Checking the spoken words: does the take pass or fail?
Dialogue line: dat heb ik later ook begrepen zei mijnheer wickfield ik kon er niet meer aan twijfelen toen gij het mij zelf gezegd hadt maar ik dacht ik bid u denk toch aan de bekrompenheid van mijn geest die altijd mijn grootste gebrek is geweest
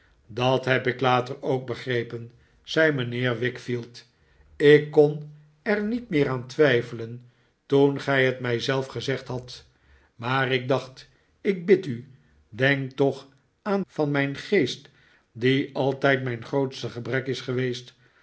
fail